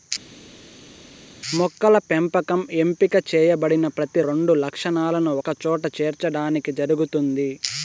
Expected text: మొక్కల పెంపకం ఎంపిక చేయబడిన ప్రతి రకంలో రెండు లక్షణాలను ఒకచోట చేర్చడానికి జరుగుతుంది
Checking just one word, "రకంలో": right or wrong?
wrong